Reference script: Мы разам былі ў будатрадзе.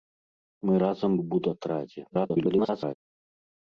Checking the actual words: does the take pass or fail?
fail